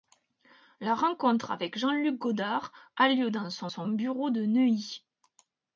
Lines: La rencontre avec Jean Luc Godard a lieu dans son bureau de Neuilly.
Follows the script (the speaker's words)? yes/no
no